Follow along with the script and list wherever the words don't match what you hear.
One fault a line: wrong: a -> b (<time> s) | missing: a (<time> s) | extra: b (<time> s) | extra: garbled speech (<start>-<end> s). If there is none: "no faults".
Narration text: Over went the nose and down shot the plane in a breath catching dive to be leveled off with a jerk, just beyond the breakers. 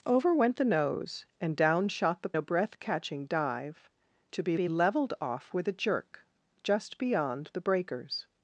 missing: plane in (2.4 s)
extra: be (4.5 s)